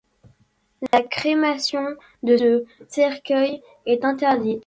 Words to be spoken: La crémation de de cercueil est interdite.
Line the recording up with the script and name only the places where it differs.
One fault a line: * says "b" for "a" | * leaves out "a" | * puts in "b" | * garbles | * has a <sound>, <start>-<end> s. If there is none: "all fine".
* has a dropout, 0.9-0.9 s